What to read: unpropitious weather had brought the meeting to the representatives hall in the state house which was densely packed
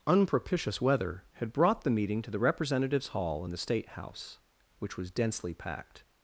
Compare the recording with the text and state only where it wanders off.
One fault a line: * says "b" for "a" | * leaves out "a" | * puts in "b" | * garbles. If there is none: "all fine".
all fine